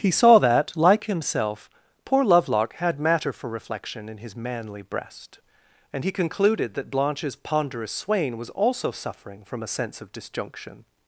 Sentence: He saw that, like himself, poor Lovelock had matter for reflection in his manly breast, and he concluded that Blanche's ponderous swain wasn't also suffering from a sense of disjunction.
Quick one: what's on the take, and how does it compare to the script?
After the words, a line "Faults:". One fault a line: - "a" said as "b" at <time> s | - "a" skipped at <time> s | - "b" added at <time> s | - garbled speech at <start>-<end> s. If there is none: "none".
He saw that, like himself, poor Lovelock had matter for reflection in his manly breast, and he concluded that Blanche's ponderous swain was also suffering from a sense of disjunction.
Faults:
- "wasn't" said as "was" at 8.4 s